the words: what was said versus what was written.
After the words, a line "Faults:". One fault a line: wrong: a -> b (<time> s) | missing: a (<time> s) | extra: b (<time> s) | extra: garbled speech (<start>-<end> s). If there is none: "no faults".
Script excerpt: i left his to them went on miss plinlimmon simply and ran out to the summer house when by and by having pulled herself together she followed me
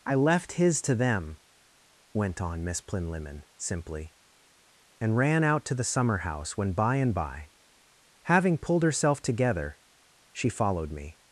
i left his to them went on miss plinlimmon simply and ran out to the summer house when by and by having pulled herself together she followed me
Faults:
no faults